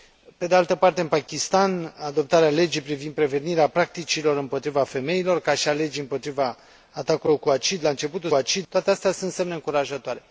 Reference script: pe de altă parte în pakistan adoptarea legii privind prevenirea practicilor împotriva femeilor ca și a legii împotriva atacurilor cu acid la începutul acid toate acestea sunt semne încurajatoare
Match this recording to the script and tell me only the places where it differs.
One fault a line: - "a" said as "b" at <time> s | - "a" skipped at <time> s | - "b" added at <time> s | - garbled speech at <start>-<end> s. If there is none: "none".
none